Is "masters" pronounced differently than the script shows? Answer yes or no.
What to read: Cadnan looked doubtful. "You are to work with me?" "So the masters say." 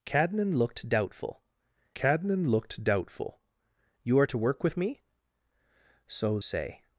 yes